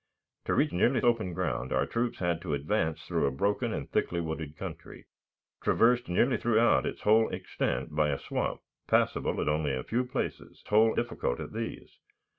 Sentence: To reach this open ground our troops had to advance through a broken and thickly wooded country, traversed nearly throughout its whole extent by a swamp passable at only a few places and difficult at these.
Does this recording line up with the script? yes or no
no